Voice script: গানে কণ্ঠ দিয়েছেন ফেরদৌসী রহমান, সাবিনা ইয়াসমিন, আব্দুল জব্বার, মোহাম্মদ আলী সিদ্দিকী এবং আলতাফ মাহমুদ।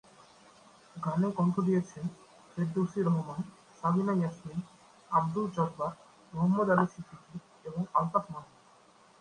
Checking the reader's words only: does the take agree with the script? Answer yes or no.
yes